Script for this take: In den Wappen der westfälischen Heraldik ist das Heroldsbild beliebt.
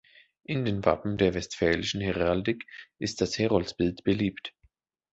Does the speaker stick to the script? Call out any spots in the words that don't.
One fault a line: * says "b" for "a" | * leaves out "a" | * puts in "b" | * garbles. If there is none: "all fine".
all fine